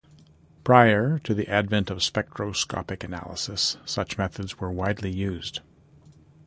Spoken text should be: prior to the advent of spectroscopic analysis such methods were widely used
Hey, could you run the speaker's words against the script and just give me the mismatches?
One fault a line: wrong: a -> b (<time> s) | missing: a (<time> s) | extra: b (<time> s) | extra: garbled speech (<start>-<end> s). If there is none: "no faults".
no faults